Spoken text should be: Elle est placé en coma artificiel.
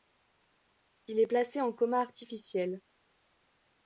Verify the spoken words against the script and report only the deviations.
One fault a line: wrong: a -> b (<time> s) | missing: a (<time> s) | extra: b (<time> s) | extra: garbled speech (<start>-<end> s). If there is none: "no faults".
wrong: Elle -> Il (1.1 s)